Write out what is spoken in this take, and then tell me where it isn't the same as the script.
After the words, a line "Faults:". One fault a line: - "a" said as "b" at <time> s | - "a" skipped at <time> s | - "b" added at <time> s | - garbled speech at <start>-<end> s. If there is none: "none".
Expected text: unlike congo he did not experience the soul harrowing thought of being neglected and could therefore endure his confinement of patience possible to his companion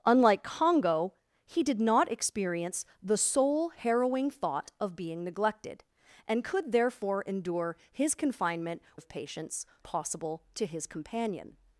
unlike congo he did not experience the soul harrowing thought of being neglected and could therefore endure his confinement of patience possible to his companion
Faults:
none